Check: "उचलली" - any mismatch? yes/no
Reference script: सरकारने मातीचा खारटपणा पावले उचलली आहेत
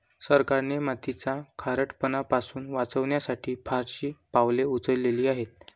no